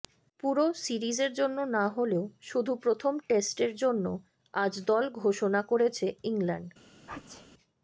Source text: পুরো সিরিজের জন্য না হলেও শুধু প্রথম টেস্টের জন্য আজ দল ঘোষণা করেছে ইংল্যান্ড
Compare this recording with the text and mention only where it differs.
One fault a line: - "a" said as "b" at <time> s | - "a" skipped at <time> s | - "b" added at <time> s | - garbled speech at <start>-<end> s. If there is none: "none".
none